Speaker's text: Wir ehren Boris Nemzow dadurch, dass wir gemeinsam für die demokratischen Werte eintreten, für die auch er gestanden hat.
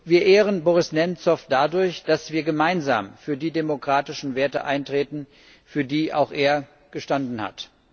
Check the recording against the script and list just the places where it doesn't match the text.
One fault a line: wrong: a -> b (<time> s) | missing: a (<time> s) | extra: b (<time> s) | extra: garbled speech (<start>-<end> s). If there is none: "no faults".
no faults